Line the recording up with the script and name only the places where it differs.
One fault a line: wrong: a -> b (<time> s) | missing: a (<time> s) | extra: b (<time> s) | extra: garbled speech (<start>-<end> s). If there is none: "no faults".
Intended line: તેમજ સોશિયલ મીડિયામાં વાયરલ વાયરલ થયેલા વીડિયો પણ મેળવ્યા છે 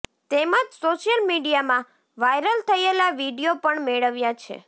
missing: વાયરલ (2.6 s)